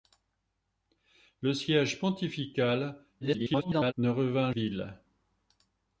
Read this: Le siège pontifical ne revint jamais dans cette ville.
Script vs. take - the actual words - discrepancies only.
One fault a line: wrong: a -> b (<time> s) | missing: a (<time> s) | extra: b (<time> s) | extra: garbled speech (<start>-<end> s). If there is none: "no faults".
extra: garbled speech (3.2-3.9 s)
missing: jamais dans cette (4.5 s)